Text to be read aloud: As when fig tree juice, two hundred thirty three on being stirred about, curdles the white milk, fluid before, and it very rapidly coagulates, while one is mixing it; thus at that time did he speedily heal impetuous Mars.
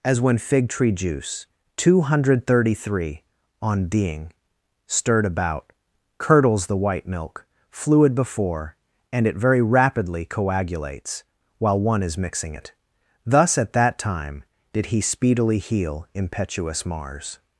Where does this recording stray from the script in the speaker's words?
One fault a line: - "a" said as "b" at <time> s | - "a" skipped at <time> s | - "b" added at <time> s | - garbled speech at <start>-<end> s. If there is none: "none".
none